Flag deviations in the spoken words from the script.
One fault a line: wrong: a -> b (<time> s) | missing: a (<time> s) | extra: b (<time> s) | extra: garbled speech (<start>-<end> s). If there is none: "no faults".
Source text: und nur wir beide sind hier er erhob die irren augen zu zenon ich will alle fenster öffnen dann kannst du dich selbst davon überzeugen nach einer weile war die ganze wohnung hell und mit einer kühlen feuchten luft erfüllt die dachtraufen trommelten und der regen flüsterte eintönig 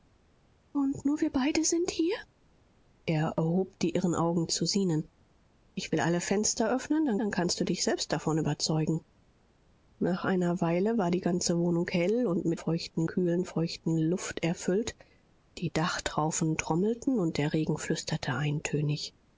extra: dann (7.2 s)
wrong: einer -> feuchten (12.5 s)